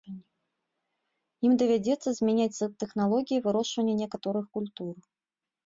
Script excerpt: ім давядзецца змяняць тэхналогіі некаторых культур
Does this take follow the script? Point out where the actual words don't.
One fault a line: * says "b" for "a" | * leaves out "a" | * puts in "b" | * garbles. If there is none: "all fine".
* puts in "вырошчвання"